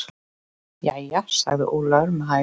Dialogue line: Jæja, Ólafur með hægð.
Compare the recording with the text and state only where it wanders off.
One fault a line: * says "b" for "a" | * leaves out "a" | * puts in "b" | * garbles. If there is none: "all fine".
* puts in "sagði"